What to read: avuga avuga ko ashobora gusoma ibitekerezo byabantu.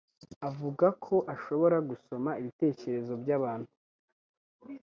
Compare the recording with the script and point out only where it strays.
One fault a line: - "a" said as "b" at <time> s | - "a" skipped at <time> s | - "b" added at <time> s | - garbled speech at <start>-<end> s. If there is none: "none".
- "avuga" skipped at 0.9 s